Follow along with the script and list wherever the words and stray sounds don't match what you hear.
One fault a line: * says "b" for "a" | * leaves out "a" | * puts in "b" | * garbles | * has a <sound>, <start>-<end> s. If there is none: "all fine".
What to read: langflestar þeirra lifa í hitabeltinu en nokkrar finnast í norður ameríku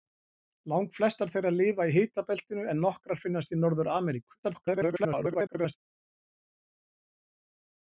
* garbles